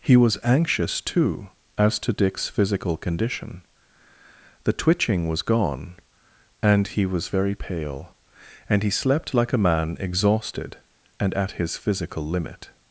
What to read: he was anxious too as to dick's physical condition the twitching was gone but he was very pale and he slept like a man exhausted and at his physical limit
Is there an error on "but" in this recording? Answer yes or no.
yes